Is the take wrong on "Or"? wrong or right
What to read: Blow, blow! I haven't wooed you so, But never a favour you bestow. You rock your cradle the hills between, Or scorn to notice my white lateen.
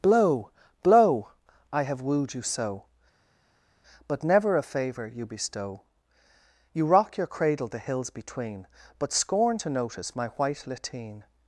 wrong